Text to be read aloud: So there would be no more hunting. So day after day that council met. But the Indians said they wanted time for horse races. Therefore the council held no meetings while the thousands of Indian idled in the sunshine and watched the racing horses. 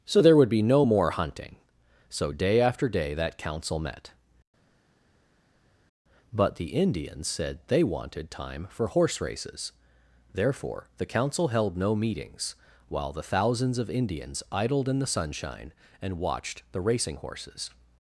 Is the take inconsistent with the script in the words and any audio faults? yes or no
yes